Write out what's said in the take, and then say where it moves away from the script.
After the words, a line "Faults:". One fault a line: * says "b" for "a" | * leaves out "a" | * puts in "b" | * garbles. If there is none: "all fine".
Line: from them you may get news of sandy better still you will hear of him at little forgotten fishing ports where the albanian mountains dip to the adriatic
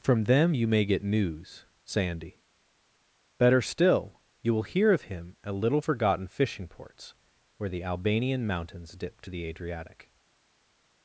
from them you may get news sandy better still you will hear of him at little forgotten fishing ports where the albanian mountains dip to the adriatic
Faults:
* leaves out "of"